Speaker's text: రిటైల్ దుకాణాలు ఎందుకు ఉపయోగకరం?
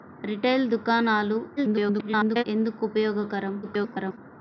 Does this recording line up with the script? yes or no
no